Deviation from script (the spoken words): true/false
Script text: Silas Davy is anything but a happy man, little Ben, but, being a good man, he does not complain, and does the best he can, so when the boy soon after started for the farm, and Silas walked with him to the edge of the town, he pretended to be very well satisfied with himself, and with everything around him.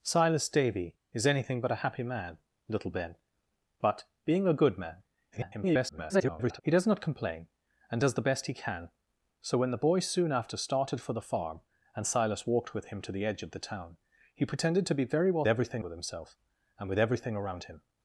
true